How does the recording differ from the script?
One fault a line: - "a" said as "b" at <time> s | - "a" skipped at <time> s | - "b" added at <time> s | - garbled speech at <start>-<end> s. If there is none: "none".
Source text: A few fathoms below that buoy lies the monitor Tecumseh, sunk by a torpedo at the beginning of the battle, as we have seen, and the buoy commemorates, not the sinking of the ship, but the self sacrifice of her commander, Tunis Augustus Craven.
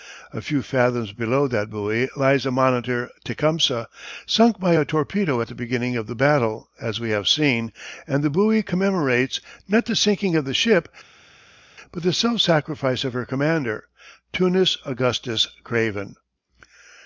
none